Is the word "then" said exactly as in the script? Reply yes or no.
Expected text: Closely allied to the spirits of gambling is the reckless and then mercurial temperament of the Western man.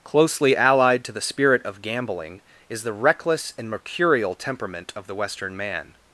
no